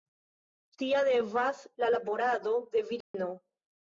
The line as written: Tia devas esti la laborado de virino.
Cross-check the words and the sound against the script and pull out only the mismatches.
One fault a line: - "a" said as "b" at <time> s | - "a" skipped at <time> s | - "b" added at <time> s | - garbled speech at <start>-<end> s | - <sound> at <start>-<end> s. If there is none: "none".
- "esti" skipped at 1.6 s
- dropout at 3.0-3.1 s